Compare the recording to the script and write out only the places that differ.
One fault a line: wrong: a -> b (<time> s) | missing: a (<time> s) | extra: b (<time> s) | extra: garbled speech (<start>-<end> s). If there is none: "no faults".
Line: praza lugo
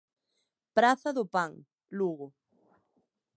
extra: do pan (1.1 s)